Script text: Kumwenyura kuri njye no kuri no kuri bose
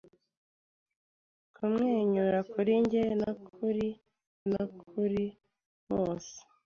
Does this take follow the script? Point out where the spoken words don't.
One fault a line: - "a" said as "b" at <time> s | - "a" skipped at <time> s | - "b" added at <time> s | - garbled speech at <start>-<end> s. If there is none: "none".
none